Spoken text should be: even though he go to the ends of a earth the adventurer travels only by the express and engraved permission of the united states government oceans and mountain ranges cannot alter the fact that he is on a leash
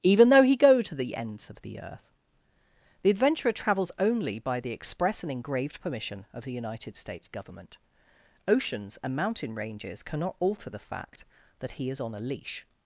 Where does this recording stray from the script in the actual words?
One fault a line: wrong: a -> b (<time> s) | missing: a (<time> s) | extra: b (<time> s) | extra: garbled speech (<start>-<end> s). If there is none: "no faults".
wrong: a -> the (1.6 s)